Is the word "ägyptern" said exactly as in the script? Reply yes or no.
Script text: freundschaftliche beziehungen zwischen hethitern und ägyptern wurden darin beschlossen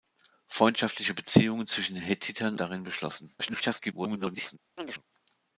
no